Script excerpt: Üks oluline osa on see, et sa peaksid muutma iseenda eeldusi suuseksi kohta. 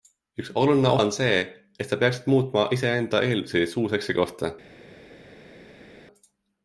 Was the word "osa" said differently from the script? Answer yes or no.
yes